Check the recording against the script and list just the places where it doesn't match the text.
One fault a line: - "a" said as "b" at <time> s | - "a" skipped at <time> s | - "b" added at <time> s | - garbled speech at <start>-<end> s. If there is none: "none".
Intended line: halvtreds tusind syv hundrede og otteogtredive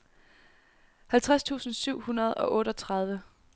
none